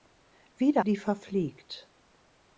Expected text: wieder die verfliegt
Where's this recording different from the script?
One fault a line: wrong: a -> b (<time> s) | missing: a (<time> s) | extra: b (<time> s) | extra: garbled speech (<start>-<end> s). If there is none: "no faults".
no faults